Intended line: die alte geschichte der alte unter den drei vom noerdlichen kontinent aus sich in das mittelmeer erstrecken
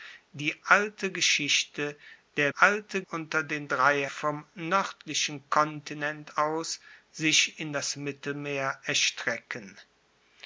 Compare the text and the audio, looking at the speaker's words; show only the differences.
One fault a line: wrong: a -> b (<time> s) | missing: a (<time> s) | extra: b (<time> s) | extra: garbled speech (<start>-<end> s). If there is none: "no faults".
no faults